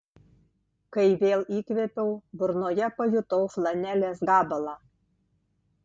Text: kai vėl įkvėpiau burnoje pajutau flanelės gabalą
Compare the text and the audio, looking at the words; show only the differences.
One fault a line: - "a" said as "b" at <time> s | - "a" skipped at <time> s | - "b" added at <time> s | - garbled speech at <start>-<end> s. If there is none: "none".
none